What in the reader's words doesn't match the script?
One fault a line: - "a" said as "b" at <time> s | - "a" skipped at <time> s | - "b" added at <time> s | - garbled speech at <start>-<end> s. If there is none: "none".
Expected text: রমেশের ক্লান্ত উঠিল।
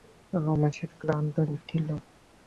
none